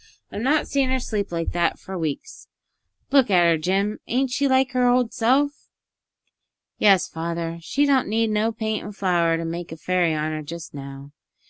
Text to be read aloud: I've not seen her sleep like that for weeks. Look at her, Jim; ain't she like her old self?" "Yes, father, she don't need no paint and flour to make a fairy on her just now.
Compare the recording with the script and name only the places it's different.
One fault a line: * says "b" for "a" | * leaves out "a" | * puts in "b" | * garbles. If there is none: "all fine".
all fine